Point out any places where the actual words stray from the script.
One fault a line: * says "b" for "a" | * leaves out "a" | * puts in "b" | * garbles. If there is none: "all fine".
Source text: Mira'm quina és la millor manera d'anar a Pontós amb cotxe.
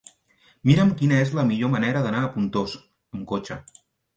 all fine